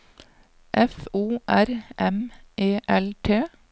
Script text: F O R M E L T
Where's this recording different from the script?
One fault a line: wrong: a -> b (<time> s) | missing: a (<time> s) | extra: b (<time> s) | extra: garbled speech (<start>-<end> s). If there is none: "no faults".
no faults